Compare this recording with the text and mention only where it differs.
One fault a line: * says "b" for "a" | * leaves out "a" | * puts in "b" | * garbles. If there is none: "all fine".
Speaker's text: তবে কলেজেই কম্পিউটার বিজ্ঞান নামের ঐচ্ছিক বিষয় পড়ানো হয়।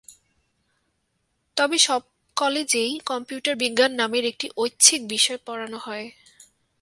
* puts in "সব"
* puts in "একটি"